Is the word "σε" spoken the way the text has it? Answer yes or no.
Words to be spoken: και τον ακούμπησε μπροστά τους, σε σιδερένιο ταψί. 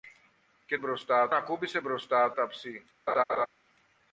no